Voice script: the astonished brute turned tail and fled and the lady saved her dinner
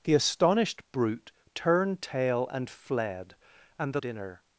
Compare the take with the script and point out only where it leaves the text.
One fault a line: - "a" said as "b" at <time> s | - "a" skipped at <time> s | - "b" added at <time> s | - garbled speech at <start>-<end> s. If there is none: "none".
- "lady saved her" skipped at 4.0 s